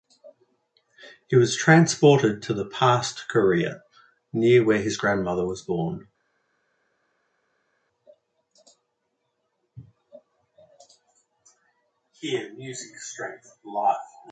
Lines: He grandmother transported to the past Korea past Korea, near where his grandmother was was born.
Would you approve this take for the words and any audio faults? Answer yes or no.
no